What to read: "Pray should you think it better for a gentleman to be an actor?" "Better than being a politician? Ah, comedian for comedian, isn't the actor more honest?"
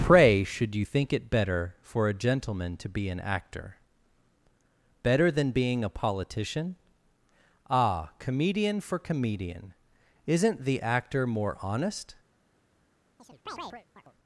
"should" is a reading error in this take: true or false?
false